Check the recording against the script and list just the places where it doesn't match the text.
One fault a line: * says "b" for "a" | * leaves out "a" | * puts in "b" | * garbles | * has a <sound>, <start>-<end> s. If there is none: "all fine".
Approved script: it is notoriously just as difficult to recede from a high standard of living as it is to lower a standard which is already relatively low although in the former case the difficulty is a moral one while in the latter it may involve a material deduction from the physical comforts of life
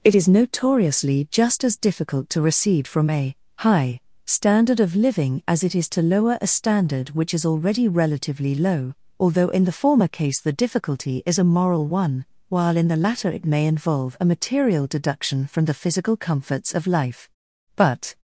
* puts in "but"